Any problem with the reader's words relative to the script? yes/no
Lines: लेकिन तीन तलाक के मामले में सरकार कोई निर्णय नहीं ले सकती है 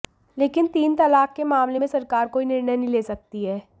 no